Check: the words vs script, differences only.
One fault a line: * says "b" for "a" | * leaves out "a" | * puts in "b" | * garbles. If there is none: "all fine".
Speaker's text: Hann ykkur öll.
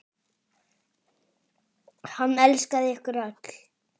* puts in "elskaði"